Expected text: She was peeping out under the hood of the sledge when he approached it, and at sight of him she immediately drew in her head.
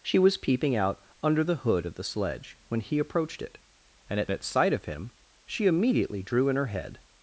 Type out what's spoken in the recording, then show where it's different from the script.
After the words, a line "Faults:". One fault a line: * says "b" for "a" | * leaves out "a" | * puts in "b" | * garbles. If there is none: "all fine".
She was peeping out under the hood of the sledge when he approached it, and at at sight of him she immediately drew in her head.
Faults:
* puts in "at"